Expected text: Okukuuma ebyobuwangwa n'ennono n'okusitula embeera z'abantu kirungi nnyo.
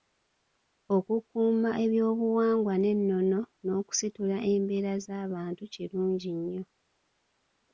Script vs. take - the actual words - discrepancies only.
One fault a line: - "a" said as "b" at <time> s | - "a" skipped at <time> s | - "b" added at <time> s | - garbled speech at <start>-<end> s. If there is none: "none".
none